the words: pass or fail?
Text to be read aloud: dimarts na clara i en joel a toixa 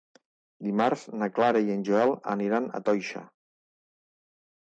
fail